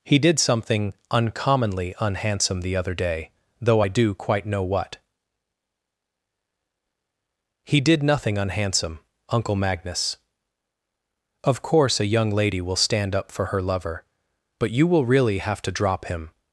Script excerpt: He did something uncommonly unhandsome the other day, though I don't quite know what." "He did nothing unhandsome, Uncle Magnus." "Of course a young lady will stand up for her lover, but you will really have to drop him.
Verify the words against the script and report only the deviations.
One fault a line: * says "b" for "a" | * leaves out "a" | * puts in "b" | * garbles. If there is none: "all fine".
* says "do" for "don't"